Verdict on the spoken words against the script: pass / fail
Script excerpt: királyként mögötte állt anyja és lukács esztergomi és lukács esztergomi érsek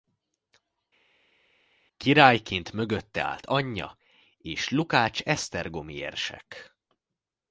fail